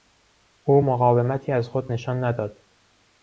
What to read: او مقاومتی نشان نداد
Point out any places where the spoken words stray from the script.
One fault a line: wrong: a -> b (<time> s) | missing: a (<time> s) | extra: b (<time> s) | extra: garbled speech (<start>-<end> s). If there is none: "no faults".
extra: از خود (1.5 s)